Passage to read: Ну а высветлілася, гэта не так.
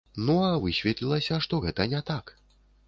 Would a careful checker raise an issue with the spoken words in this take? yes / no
yes